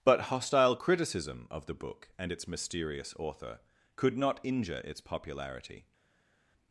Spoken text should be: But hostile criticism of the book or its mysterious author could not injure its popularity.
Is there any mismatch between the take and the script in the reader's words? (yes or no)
yes